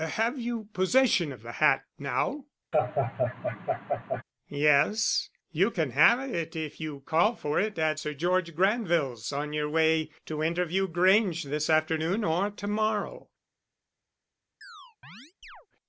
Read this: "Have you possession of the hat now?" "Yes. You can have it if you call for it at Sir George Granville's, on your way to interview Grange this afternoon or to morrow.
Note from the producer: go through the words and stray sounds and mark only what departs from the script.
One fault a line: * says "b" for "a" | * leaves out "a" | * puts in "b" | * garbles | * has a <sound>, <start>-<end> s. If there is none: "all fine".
* has a laugh, 2.7-4.2 s
* has a chirp, 14.6-15.7 s